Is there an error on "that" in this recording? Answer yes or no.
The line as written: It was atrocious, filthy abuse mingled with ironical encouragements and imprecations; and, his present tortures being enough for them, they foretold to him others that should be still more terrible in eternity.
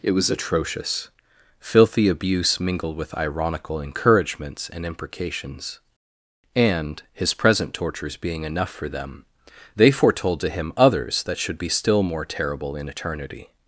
no